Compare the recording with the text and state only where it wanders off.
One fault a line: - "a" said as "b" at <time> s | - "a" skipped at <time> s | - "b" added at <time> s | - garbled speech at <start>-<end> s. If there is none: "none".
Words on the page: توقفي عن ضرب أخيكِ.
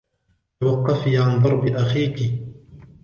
none